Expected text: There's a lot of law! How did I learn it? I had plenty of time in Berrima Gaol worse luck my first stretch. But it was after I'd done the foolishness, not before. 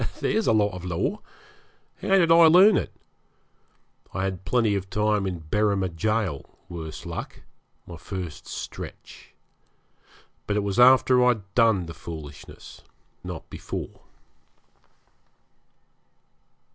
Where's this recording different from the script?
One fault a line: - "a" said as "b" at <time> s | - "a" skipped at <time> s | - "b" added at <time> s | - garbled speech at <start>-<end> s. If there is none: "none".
none